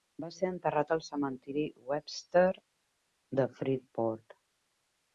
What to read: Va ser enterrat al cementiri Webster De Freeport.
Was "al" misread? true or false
false